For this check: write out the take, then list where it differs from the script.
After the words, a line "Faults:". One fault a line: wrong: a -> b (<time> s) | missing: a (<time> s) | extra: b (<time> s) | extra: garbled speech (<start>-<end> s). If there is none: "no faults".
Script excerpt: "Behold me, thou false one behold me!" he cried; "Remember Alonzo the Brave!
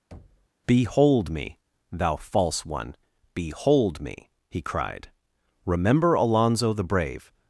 "Behold me, thou false one behold me!" he cried; "Remember Alonzo the Brave!
Faults:
no faults